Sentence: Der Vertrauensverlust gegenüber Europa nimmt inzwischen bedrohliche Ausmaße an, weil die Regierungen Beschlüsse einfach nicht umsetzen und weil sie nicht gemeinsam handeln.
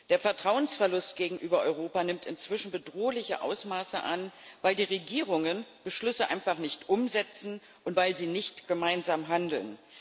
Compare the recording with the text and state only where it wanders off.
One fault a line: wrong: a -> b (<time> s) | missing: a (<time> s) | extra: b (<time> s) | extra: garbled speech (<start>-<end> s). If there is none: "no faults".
no faults